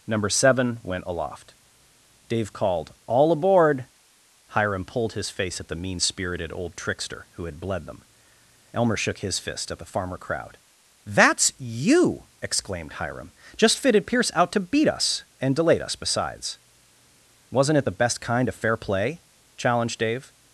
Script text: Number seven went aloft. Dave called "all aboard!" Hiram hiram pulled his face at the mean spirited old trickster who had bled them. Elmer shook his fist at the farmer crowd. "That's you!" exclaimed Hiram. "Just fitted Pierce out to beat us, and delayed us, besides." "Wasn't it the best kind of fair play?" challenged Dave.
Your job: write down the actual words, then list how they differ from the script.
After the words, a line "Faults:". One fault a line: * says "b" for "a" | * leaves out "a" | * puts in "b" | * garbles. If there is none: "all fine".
Number seven went aloft. Dave called "all aboard!" Hiram pulled his face at the mean spirited old trickster who had bled them. Elmer shook his fist at the farmer crowd. "That's you!" exclaimed Hiram. "Just fitted Pierce out to beat us, and delayed us, besides." "Wasn't it the best kind of fair play?" challenged Dave.
Faults:
* leaves out "hiram"